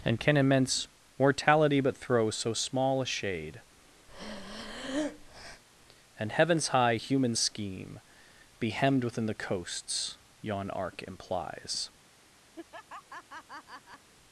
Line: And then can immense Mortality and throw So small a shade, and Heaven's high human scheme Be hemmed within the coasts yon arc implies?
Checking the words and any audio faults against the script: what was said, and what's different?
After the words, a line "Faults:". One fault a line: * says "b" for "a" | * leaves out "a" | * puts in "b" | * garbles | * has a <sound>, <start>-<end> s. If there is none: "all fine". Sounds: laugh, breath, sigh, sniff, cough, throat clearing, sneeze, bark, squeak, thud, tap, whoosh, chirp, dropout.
And can immense Mortality but throw So small a shade, and Heaven's high human scheme Be hemmed within the coasts yon arc implies?
Faults:
* leaves out "then"
* says "but" for "and"
* has a breath, 4.1-5.6 s
* has a laugh, 12.6-14.1 s